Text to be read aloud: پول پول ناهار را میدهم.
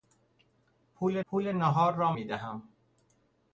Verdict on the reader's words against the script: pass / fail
pass